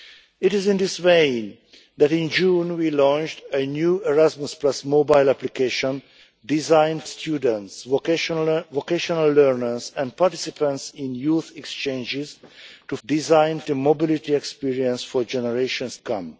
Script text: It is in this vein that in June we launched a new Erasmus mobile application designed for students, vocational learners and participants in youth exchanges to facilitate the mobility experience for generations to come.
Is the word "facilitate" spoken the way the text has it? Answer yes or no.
no